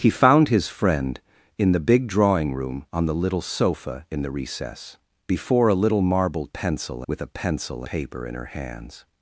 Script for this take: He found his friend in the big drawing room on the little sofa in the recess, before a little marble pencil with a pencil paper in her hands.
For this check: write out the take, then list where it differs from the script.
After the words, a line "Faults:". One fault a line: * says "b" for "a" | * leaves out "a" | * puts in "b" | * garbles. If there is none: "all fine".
He found his friend in the big drawing room on the little sofa in the recess, before a little marble pencil with a pencil paper in her hands.
Faults:
all fine